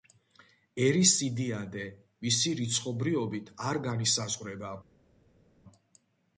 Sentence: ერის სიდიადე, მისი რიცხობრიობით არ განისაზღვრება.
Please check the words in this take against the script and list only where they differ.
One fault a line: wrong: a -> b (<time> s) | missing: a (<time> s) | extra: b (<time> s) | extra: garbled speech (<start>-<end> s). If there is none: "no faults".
no faults